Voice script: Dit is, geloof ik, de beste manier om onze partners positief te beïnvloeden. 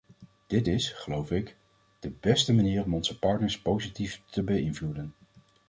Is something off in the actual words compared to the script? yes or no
no